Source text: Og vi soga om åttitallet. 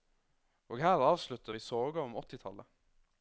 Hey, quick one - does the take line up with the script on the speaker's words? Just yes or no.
no